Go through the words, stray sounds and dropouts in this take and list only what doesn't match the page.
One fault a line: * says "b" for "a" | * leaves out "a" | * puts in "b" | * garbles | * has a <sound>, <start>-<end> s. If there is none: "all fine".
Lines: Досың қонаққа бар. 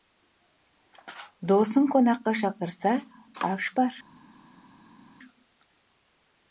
* puts in "шақырса аш"